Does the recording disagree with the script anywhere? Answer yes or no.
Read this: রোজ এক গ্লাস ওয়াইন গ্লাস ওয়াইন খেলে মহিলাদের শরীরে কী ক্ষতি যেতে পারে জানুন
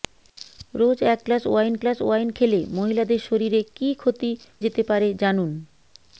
no